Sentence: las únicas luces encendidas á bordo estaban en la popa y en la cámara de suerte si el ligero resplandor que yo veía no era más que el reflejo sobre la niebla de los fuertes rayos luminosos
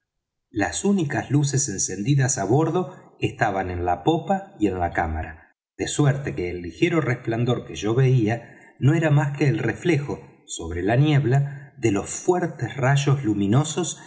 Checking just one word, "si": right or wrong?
wrong